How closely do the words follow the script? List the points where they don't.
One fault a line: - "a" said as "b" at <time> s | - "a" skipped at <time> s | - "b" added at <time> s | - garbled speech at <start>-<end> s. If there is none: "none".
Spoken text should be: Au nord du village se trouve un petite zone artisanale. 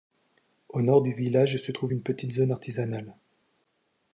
- "un" said as "une" at 1.9 s